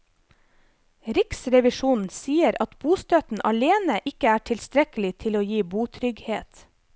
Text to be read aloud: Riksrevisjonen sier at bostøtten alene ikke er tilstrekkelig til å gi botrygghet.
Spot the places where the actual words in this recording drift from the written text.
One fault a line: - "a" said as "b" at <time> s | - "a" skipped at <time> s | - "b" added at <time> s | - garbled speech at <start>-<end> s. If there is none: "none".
none